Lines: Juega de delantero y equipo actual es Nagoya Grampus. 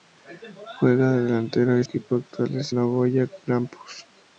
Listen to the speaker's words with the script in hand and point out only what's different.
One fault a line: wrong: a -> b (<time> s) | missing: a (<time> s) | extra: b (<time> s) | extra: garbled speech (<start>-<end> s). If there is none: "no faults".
no faults